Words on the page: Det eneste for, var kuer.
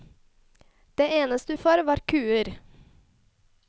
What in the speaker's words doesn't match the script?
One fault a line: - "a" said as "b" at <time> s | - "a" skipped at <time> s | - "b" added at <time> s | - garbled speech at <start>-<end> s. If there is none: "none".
none